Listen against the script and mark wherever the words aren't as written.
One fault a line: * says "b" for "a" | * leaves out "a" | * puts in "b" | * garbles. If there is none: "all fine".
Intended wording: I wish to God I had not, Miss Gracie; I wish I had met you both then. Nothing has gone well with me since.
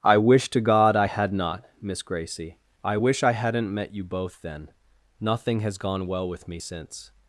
* says "hadn't" for "had"